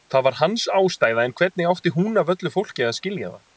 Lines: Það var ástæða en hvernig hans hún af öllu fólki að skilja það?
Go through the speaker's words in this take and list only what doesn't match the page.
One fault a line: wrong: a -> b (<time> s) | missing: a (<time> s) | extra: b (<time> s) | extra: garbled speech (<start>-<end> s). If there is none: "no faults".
extra: hans (0.4 s)
wrong: hans -> átti (1.7 s)